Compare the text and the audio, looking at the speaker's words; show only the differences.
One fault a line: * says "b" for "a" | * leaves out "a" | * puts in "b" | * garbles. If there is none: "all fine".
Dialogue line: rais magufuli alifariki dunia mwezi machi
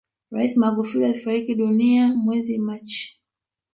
all fine